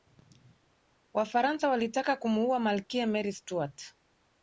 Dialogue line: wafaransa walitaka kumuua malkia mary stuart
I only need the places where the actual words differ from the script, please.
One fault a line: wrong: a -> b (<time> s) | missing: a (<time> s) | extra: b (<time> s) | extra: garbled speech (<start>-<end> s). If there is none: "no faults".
no faults